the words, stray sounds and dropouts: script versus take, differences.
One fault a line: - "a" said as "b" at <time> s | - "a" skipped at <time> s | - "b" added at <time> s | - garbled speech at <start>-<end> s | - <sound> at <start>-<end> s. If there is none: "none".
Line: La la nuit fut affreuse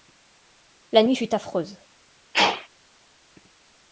- "la" skipped at 1.0 s
- sneeze at 2.3-2.7 s